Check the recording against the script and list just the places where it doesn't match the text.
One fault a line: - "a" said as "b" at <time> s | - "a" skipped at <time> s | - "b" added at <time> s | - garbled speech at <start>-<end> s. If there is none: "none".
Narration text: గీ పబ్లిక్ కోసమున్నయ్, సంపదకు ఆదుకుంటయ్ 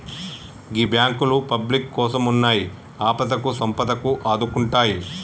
- "బాంకులు" added at 0.8 s
- "ఆపదకు" added at 3.0 s